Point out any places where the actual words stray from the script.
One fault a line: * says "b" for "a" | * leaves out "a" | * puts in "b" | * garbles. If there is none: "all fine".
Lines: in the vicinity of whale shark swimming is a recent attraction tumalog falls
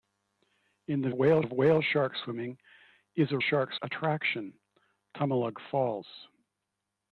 * says "whale" for "vicinity"
* says "shark" for "recent"